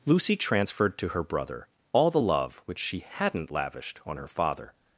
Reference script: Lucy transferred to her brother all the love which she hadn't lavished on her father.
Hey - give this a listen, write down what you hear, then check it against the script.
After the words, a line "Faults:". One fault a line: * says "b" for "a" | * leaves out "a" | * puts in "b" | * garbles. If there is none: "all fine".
Lucy transferred to her brother all the love which she hadn't lavished on her father.
Faults:
all fine